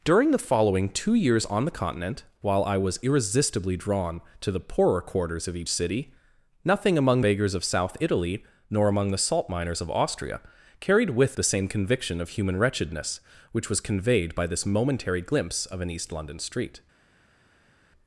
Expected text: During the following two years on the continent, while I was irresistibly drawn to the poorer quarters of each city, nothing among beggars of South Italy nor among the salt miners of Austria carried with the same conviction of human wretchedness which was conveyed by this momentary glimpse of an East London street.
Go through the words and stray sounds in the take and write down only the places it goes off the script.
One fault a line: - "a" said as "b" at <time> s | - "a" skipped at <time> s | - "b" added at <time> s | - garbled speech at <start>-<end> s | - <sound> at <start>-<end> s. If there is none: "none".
none